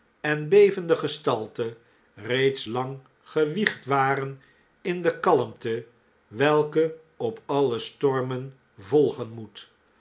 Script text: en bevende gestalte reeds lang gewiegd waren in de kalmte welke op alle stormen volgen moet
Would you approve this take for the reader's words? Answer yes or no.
yes